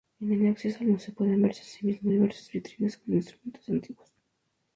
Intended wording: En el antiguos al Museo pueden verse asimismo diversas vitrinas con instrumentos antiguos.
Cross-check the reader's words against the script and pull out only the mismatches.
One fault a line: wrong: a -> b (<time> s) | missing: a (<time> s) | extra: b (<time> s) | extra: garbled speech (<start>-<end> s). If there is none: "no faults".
wrong: antiguos -> acceso (0.5 s)